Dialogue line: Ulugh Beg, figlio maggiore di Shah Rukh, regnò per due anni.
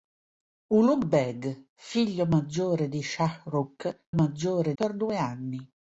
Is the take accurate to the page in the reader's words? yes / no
no